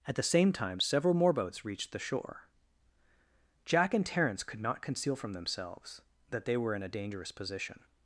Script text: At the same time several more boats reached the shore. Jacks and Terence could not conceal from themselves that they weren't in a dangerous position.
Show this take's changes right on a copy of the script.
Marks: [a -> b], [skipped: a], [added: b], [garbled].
At the same time several more boats reached the shore. [Jacks -> Jack] and Terence could not conceal from themselves that they [weren't -> were] in a dangerous position.